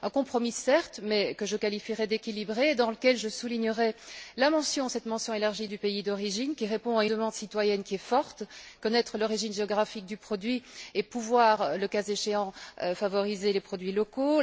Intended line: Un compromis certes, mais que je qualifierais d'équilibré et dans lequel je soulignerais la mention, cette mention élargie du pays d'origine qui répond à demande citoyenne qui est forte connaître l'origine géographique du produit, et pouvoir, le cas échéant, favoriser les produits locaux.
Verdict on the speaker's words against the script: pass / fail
pass